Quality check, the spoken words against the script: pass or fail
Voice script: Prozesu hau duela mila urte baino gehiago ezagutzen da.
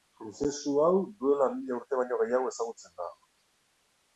pass